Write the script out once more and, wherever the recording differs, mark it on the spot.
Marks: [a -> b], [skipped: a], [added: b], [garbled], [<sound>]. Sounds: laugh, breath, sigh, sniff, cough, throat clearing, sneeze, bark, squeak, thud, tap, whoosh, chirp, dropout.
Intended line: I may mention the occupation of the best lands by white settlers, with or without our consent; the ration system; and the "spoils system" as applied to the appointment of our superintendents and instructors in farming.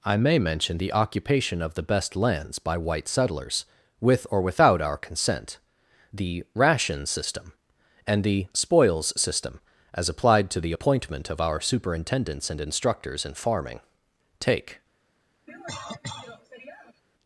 I may mention the occupation of the best lands by white settlers, with or without our consent; the ration system; and the "spoils system" as applied to the appointment of our superintendents and instructors in farming. [added: Take] [cough]